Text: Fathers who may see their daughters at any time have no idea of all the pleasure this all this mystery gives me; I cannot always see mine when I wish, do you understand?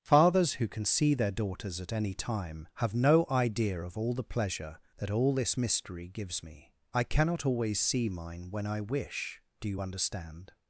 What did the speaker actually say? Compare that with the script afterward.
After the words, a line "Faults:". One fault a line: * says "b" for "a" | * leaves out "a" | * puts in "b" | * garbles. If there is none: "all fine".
Fathers who can see their daughters at any time have no idea of all the pleasure that all this mystery gives me; I cannot always see mine when I wish, do you understand?
Faults:
* says "can" for "may"
* says "that" for "this"